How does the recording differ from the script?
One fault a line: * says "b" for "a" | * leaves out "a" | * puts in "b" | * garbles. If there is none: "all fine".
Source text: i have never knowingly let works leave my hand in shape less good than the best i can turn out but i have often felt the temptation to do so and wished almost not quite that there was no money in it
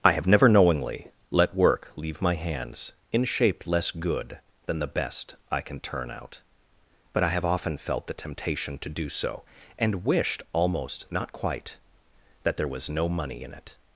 * says "work" for "works"
* says "hands" for "hand"